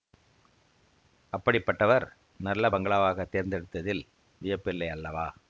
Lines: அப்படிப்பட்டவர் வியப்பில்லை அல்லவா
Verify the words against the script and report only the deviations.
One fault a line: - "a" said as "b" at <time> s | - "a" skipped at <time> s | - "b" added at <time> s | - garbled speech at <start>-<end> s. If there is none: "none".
- "நல்ல பங்களாவாகத் தேர்ந்தெடுத்ததில்" added at 2.4 s